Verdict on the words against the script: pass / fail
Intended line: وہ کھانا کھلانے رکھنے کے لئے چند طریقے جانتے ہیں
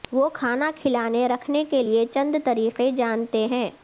pass